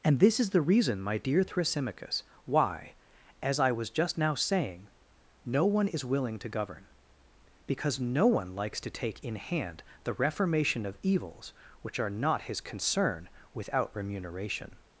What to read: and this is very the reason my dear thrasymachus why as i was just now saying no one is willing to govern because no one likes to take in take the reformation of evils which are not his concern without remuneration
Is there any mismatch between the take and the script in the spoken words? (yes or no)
yes